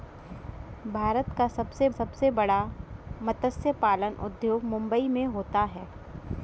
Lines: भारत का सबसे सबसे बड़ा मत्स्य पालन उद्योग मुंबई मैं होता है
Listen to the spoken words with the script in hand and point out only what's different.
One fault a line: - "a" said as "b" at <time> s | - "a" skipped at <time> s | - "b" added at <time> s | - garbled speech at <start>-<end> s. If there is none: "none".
none